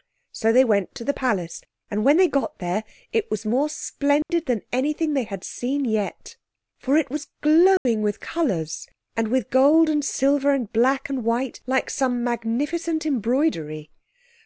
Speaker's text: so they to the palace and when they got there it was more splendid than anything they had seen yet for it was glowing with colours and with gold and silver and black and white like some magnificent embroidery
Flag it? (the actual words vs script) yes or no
yes